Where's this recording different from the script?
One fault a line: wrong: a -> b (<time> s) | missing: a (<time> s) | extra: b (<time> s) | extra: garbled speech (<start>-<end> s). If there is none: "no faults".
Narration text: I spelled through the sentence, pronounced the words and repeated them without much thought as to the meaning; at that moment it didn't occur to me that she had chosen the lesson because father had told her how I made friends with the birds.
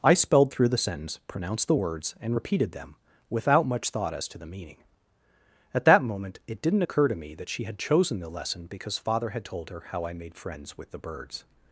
no faults